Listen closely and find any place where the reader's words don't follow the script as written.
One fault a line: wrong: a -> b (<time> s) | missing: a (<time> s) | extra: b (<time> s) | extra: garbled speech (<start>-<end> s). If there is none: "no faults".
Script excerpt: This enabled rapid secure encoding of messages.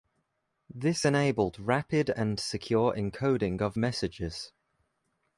extra: and (2.1 s)